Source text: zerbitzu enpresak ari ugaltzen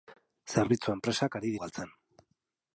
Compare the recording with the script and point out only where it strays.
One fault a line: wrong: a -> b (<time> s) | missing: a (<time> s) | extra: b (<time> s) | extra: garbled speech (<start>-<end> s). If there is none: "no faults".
no faults